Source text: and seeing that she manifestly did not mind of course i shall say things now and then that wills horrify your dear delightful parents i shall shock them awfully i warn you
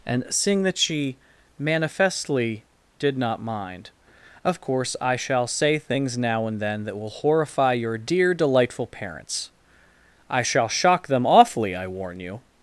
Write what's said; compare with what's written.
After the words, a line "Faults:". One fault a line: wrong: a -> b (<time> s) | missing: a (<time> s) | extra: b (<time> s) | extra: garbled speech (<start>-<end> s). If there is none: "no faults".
and seeing that she manifestly did not mind of course i shall say things now and then that will horrify your dear delightful parents i shall shock them awfully i warn you
Faults:
wrong: wills -> will (7.0 s)